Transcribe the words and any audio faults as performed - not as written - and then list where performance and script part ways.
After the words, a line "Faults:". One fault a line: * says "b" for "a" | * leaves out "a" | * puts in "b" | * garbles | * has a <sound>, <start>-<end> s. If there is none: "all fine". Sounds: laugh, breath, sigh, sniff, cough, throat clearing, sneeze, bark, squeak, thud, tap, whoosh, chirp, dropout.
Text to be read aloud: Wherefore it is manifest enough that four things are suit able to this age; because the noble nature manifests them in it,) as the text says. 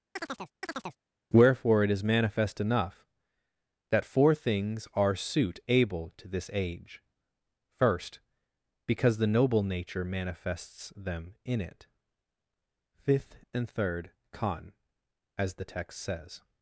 Wherefore it is manifest enough that four things are suit able to this age; first because the noble nature manifests them in it,) fifth and third con as the text says.
Faults:
* has a chirp, 0.2-1.0 s
* puts in "first"
* puts in "fifth and third con"